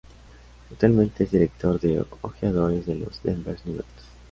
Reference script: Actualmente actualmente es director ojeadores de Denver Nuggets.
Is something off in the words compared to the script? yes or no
yes